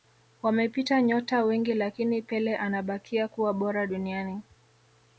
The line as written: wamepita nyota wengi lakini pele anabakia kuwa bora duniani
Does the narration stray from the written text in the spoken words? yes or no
no